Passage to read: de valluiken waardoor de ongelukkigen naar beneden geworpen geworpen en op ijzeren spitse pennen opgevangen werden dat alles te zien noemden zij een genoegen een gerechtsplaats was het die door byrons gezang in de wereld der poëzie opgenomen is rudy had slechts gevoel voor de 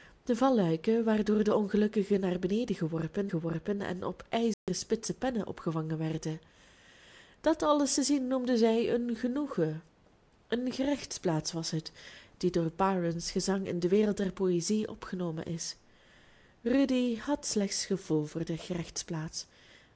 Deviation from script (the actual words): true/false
false